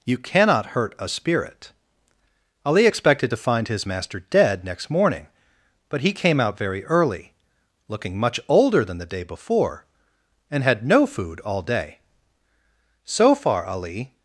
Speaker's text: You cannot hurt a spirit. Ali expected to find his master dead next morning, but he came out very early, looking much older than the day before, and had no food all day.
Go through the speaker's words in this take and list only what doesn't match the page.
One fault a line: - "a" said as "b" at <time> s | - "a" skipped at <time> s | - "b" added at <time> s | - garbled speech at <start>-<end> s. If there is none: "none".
- "So far Ali" added at 13.0 s